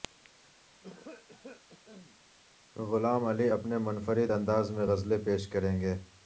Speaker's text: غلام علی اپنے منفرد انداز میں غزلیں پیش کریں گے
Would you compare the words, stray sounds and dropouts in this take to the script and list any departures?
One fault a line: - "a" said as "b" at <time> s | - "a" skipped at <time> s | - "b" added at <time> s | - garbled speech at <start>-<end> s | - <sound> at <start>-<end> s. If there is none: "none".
- cough at 0.8-2.2 s